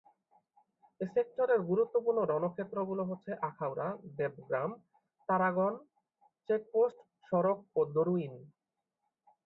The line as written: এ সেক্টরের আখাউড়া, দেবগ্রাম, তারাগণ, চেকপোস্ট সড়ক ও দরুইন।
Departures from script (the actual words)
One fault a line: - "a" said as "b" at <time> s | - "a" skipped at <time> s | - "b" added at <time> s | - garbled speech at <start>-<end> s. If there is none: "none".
- "গুরুত্বপূর্ণ রণক্ষেত্রগুলো হচ্ছে" added at 1.7 s